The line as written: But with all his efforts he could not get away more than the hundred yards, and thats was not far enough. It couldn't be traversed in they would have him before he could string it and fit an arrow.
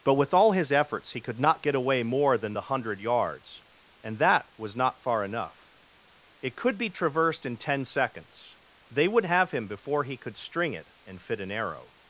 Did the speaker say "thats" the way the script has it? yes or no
no